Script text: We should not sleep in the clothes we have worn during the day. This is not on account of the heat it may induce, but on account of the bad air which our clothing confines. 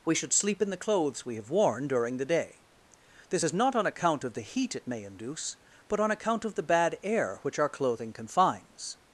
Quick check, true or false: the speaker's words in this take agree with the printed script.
false